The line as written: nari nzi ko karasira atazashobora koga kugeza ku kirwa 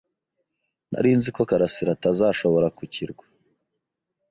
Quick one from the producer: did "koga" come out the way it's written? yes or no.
no